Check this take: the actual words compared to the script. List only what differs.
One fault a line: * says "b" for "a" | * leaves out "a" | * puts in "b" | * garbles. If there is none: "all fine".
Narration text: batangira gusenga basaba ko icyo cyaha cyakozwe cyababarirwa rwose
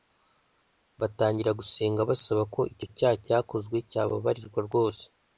all fine